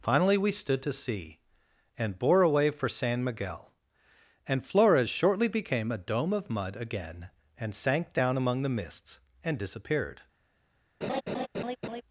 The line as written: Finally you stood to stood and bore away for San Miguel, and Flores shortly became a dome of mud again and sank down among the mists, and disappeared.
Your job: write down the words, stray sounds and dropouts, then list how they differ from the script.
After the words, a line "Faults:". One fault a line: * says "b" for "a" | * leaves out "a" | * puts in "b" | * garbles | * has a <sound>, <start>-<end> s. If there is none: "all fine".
Finally we stood to sea and bore away for San Miguel, and Flores shortly became a dome of mud again and sank down among the mists, and disappeared.
Faults:
* says "we" for "you"
* says "sea" for "stood"
* has a laugh, 11.0-12.0 s